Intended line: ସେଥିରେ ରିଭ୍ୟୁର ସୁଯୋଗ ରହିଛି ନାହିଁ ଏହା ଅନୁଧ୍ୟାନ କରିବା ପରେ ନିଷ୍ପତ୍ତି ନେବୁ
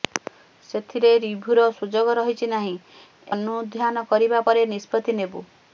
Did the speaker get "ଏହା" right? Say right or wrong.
wrong